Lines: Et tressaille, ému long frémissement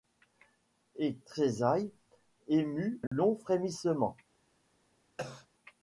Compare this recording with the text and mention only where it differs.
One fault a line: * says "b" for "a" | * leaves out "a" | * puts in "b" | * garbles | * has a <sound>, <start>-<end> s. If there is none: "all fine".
* has a dropout, 3.1-3.1 s
* has a cough, 5.2-5.5 s